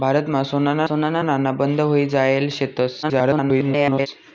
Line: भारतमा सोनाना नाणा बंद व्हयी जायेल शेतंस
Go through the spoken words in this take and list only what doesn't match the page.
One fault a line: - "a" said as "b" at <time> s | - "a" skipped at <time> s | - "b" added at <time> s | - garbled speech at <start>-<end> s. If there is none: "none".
- "सोनाना" added at 0.8 s
- garbled speech at 3.0-4.1 s